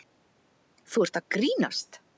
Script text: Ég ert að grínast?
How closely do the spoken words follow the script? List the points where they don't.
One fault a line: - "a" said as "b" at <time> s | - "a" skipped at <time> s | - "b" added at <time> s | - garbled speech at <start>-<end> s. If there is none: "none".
- "Ég" said as "Þú" at 0.9 s